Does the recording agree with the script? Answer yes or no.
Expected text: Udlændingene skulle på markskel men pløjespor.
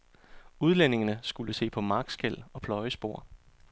no